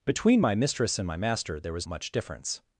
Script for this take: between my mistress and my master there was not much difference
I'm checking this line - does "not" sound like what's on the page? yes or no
no